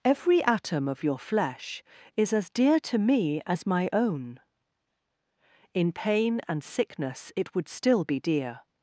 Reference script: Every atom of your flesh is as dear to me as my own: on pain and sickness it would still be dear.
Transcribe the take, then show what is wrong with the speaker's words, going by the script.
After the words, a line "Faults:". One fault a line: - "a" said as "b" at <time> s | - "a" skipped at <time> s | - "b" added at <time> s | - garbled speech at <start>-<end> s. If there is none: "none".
Every atom of your flesh is as dear to me as my own: in pain and sickness it would still be dear.
Faults:
- "on" said as "in" at 5.8 s